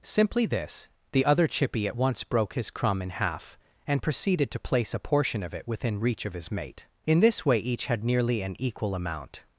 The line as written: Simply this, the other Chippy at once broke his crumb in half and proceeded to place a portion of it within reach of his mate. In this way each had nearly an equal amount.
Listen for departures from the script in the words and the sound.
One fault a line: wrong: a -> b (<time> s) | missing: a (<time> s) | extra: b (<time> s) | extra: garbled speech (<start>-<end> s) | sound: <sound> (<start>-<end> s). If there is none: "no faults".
no faults